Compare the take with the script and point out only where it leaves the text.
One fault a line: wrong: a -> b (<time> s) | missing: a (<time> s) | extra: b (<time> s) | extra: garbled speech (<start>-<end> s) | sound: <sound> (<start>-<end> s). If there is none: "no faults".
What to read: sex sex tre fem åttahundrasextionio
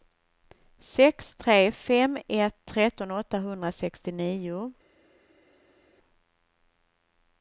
missing: sex (1.4 s)
extra: ett tretton (2.3 s)